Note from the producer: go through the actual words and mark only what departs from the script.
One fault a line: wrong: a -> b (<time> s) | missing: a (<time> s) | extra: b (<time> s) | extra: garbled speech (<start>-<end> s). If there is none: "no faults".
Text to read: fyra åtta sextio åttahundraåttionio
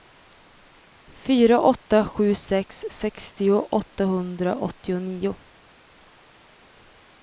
extra: sju sex (2.0 s)